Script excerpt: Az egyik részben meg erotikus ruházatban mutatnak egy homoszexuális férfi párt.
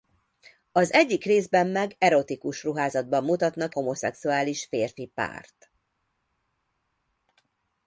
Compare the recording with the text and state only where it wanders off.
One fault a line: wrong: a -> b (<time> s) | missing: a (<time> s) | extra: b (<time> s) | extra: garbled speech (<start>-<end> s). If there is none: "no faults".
missing: egy (3.8 s)